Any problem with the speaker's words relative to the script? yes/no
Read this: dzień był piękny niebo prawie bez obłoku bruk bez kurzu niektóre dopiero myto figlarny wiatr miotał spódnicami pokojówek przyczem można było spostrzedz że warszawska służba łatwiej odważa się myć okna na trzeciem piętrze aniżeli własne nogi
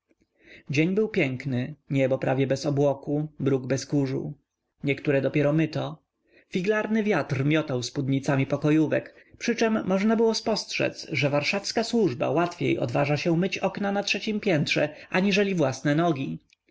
no